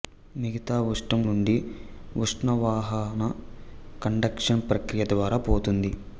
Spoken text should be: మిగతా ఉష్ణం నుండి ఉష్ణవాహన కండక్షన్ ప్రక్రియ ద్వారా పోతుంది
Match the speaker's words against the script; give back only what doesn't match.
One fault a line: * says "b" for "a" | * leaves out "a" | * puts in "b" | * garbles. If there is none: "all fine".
all fine